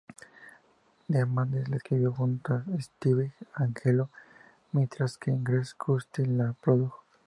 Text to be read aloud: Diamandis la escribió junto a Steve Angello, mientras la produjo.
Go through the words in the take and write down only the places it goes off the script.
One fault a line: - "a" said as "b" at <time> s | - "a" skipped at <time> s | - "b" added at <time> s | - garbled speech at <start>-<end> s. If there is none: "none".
- "que Greg Kurstin" added at 5.2 s